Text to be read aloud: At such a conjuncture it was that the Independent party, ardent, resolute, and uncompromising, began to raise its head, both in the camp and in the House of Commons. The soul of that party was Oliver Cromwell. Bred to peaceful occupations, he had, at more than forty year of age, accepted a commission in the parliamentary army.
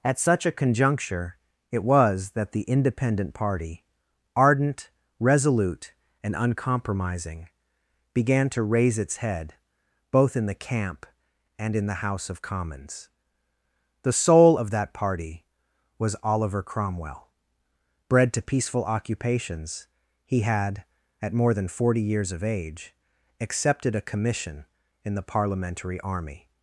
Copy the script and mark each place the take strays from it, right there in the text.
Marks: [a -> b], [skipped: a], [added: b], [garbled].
At such a conjuncture it was that the Independent party, ardent, resolute, and uncompromising, began to raise its head, both in the camp and in the House of Commons. The soul of that party was Oliver Cromwell. Bred to peaceful occupations, he had, at more than forty [year -> years] of age, accepted a commission in the parliamentary army.